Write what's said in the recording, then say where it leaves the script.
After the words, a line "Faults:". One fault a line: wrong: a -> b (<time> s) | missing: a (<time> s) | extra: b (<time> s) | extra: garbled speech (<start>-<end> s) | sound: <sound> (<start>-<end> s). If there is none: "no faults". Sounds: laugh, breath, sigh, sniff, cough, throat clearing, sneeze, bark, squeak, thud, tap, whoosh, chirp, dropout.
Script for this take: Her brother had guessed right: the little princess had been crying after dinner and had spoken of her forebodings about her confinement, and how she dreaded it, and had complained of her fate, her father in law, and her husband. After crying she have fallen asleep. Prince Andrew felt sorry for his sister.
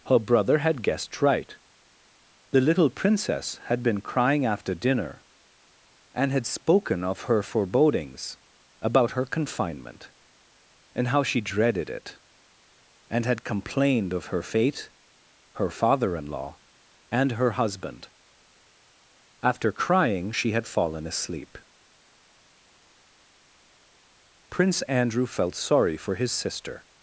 Her brother had guessed right: the little princess had been crying after dinner and had spoken of her forebodings about her confinement, and how she dreaded it, and had complained of her fate, her father in law, and her husband. After crying she had fallen asleep. Prince Andrew felt sorry for his sister.
Faults:
wrong: have -> had (20.5 s)